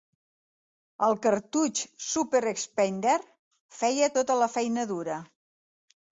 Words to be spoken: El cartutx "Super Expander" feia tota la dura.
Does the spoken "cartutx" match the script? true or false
true